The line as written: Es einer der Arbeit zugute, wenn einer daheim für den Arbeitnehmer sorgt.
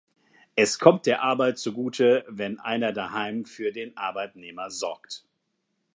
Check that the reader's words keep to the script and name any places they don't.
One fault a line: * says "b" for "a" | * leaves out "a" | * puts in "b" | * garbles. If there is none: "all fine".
* says "kommt" for "einer"